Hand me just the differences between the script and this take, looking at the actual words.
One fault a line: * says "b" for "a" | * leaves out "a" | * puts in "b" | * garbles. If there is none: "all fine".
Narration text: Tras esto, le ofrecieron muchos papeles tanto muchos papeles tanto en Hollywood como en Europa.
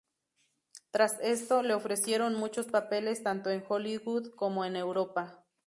* leaves out "muchos papeles tanto"